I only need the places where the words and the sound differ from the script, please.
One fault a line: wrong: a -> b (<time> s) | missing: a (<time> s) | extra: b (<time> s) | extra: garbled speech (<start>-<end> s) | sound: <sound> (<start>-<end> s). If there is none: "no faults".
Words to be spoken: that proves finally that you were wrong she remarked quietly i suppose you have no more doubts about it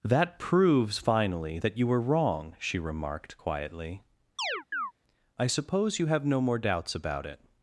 sound: chirp (4.4-4.9 s)